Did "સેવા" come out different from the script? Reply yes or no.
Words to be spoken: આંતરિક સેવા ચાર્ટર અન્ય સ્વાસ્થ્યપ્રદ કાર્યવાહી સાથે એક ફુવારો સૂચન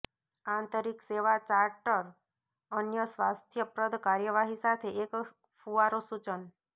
no